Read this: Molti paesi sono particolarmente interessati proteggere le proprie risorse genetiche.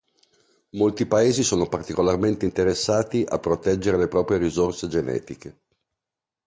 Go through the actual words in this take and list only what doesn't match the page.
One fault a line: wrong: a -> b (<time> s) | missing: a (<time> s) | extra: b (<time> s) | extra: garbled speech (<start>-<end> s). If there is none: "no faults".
extra: a (3.3 s)